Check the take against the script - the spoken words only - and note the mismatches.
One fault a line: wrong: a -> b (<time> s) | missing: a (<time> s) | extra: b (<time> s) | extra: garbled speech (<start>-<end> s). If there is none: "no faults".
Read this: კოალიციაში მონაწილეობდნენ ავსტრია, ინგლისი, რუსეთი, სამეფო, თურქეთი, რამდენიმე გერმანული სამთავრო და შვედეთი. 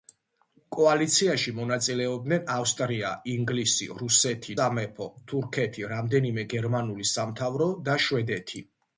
no faults